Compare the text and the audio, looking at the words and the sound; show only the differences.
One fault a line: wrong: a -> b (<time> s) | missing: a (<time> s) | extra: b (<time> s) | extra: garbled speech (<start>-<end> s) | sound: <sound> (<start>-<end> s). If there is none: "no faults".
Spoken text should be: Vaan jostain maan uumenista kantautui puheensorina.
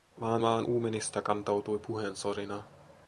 missing: jostain (0.4 s)